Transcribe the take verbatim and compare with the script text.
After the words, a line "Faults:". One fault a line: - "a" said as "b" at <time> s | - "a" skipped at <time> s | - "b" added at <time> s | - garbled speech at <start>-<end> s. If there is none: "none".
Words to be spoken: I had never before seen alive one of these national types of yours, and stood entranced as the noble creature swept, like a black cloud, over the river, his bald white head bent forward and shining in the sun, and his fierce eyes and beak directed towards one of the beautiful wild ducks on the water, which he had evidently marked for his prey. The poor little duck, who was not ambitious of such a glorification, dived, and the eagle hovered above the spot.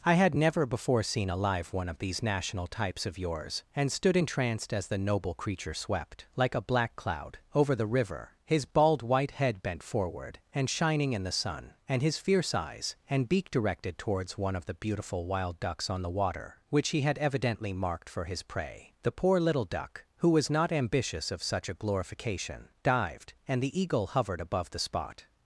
I had never before seen alive one of these national types of yours, and stood entranced as the noble creature swept, like a black cloud, over the river, his bald white head bent forward and shining in the sun, and his fierce eyes and beak directed towards one of the beautiful wild ducks on the water, which he had evidently marked for his prey. The poor little duck, who was not ambitious of such a glorification, dived, and the eagle hovered above the spot.
Faults:
none